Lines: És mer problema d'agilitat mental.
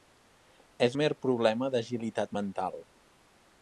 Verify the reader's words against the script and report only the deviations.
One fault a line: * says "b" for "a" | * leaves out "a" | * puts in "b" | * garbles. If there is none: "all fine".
all fine